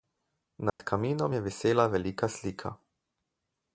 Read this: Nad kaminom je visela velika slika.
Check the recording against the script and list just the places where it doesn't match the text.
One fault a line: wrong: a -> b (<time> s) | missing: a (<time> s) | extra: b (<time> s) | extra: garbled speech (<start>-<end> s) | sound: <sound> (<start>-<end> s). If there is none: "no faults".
sound: dropout (0.7-0.8 s)